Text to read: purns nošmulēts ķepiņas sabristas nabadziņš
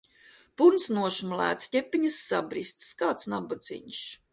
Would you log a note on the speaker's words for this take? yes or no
yes